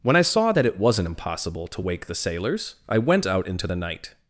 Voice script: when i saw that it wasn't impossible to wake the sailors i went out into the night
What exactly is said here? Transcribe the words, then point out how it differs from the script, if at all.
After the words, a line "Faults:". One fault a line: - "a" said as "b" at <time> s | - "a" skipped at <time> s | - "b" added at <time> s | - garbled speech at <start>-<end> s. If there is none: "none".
when i saw that it wasn't impossible to wake the sailors i went out into the night
Faults:
none